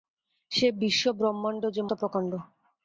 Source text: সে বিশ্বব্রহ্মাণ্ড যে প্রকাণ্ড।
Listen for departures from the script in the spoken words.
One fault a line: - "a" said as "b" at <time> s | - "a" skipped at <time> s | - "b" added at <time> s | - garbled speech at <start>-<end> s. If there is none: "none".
none